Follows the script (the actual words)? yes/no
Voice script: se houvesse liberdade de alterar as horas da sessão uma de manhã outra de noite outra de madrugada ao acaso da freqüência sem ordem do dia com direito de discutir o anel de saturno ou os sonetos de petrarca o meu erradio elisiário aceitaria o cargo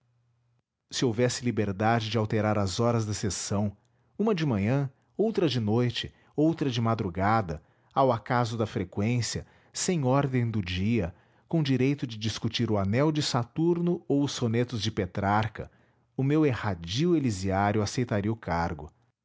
yes